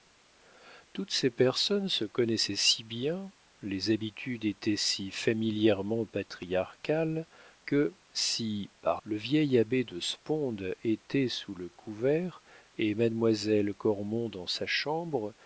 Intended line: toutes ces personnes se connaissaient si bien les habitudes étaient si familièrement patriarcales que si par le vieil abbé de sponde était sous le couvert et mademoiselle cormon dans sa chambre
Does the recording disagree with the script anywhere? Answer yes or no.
no